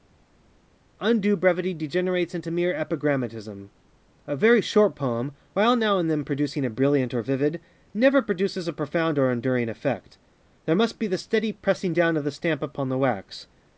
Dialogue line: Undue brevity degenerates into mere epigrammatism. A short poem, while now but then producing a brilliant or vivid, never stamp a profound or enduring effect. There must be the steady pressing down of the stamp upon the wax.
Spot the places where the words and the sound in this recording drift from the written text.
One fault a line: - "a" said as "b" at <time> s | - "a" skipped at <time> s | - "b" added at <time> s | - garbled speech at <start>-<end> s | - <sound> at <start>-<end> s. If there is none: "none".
- "very" added at 4.4 s
- "but" said as "and" at 6.0 s
- "stamp" said as "produces" at 8.2 s